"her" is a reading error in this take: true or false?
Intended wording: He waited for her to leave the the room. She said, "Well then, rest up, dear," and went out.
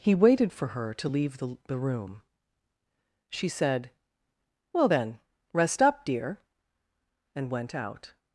false